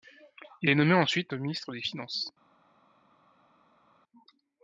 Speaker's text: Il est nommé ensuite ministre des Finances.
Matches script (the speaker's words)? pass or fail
pass